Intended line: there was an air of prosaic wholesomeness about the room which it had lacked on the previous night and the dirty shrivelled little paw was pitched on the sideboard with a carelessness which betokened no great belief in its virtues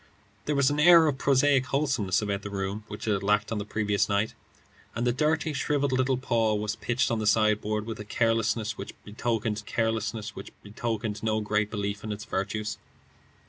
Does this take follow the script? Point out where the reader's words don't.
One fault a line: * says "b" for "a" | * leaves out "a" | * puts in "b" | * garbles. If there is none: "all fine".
* puts in "carelessness which betokened"